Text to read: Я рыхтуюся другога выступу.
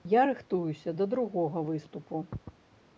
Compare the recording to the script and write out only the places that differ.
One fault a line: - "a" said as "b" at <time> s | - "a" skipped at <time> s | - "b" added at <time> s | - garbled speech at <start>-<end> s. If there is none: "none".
- "да" added at 0.9 s